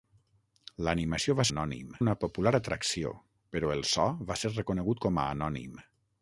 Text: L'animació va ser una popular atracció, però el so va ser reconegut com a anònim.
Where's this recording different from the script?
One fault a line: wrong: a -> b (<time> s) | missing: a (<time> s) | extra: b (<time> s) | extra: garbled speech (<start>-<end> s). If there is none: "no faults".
wrong: ser -> anònim (1.5 s)